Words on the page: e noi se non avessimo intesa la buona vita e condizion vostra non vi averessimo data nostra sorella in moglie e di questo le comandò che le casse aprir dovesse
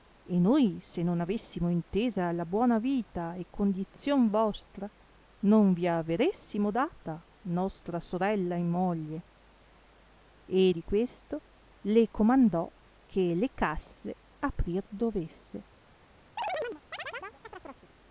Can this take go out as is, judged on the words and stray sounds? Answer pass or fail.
fail